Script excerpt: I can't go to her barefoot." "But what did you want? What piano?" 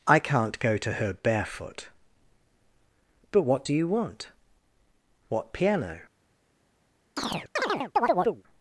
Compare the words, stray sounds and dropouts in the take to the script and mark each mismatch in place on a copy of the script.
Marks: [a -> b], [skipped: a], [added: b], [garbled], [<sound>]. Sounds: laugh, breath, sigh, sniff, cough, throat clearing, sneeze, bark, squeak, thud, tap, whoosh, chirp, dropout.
I can't go to her barefoot." "But what [did -> do] you want? What piano?" [chirp]